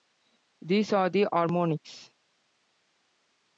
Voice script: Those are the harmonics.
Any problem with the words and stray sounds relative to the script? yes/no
yes